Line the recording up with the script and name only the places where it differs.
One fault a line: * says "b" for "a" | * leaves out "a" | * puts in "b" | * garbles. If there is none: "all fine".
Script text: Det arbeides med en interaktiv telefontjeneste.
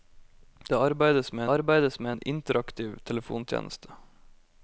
* puts in "arbeides med"